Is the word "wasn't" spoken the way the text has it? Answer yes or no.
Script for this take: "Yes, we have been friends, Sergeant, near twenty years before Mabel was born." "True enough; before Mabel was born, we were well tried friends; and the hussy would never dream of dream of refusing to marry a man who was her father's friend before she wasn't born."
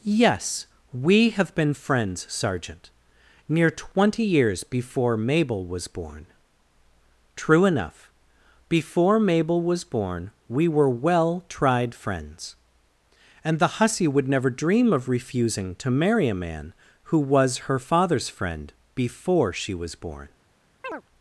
no